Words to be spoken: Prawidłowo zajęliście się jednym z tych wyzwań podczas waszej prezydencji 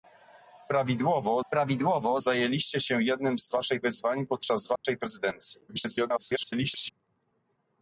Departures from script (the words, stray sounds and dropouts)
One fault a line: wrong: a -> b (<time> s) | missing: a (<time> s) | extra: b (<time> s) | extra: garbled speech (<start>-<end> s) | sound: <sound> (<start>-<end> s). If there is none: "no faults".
extra: prawidłowo (1.5 s)
wrong: tych -> waszej (3.5 s)
sound: dropout (4.8-4.8 s)
extra: garbled speech (5.7-6.9 s)